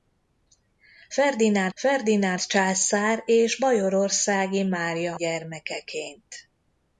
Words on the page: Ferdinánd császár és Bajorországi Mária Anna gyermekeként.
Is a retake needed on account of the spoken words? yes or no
yes